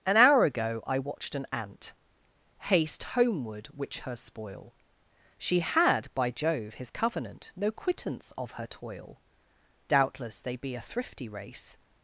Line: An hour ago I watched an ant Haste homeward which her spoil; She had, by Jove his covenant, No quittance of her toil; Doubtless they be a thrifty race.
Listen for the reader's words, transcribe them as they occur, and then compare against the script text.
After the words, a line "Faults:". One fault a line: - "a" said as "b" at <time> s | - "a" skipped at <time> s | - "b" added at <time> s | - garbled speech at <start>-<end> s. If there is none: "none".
An hour ago I watched an ant Haste homeward which her spoil; She had, by Jove his covenant, No quittance of her toil; Doubtless they be a thrifty race.
Faults:
none